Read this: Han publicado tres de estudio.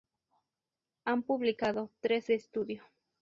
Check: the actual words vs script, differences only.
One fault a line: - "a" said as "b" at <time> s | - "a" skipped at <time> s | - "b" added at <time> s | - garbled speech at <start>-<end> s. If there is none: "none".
none